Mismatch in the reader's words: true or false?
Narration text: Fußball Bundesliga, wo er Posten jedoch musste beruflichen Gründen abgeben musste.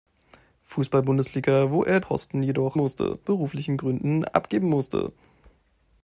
false